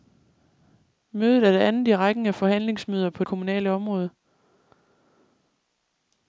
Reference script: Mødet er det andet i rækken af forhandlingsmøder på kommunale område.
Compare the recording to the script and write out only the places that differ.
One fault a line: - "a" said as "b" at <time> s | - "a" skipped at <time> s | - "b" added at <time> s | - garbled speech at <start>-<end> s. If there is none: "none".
none